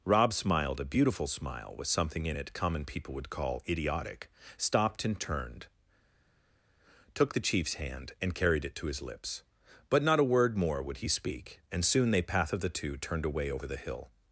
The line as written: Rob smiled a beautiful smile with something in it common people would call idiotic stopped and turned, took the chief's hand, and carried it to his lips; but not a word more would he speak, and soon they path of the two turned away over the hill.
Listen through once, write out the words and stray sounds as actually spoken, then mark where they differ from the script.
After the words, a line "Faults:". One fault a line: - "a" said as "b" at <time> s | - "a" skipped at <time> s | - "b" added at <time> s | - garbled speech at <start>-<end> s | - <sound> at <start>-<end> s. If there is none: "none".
Rob smiled a beautiful smile with something in it common people would call idiotic stopped and turned, took the chief's hand, and carried it to his lips; but not a word more would he speak, and soon they path of the two turned away over the hill.
Faults:
none